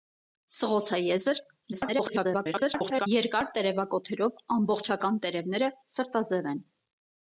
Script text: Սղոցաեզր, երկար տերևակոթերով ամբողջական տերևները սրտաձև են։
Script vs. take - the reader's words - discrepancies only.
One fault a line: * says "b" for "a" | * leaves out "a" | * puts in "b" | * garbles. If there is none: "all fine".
* garbles